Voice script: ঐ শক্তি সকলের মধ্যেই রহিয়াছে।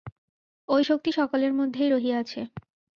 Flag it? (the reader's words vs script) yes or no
no